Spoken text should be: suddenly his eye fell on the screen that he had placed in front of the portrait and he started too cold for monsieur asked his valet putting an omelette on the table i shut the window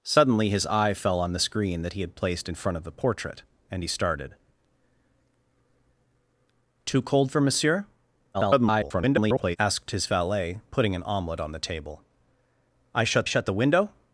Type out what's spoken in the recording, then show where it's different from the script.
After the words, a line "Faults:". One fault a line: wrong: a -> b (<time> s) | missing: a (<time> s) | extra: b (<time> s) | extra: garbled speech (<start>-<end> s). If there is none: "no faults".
suddenly his eye fell on the screen that he had placed in front of the portrait and he started too cold for monsieur [garbled] asked his valet putting an omelette on the table i shut shut the window
Faults:
extra: garbled speech (8.3-9.6 s)
extra: shut (13.2 s)